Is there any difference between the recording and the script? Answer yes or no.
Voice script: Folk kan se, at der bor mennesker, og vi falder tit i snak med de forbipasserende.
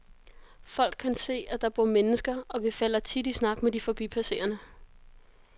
no